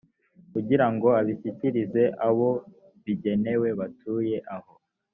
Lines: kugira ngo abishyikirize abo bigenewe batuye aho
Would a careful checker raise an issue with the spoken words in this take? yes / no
no